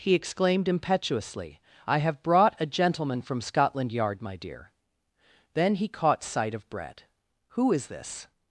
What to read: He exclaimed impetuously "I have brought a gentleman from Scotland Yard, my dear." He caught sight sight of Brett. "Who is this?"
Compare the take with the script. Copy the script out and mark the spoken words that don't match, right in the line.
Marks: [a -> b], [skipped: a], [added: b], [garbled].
He exclaimed impetuously "I have brought a gentleman from Scotland Yard, my dear." [added: Then] He caught sight [skipped: sight] of Brett. "Who is this?"